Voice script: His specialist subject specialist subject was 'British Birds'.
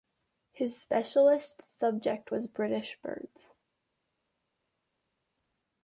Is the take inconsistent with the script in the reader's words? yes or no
yes